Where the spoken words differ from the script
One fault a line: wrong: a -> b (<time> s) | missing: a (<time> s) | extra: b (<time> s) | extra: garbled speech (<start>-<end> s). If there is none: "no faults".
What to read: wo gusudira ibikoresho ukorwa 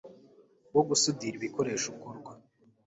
no faults